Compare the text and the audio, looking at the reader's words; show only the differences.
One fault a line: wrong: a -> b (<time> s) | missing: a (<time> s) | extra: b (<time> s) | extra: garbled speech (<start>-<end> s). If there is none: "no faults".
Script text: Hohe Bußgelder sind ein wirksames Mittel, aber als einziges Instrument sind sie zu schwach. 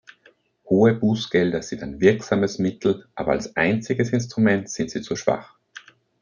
no faults